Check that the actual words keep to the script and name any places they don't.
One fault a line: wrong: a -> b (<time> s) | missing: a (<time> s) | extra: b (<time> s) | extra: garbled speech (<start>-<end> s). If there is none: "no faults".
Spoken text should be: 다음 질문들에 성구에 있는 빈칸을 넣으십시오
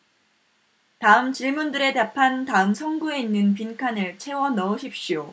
extra: 답한 다음 (1.9 s)
extra: 채워 (4.2 s)